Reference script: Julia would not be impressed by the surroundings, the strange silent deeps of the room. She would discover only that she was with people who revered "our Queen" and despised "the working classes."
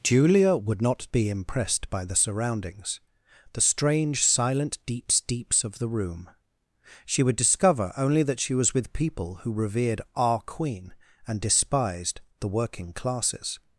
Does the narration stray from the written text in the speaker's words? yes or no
yes